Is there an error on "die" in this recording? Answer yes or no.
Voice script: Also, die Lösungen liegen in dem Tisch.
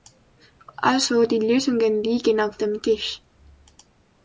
no